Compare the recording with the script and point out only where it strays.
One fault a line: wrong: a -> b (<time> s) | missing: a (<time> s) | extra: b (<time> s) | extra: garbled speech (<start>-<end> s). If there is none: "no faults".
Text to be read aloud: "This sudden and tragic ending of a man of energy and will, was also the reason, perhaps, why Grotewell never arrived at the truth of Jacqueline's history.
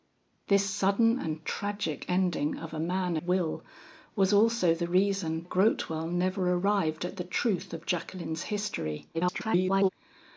missing: of energy and (3.1 s)
missing: perhaps why (5.4 s)
extra: garbled speech (9.1-9.9 s)